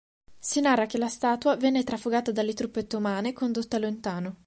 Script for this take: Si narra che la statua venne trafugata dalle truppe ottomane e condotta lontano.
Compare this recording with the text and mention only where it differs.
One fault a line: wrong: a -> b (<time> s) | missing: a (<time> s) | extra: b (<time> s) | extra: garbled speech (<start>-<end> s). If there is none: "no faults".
no faults